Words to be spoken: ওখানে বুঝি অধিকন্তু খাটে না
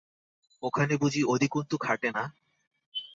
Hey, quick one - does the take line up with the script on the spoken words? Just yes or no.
yes